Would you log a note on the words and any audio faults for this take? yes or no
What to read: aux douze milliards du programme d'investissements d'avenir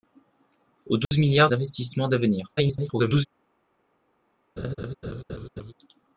yes